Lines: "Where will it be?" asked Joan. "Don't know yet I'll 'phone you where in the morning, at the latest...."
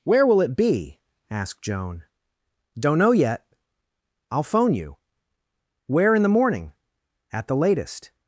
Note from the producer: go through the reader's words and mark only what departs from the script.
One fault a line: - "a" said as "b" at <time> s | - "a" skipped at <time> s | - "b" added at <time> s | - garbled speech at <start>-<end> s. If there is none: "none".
none